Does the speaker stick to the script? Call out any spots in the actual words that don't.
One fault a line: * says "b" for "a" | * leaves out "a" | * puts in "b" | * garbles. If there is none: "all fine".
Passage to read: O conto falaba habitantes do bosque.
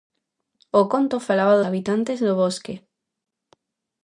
all fine